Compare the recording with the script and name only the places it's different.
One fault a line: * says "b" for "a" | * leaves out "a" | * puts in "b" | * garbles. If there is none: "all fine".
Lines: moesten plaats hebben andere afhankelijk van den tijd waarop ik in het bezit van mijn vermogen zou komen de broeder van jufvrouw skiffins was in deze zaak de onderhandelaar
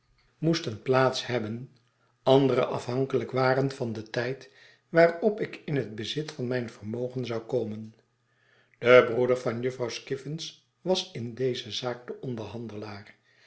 * puts in "waren"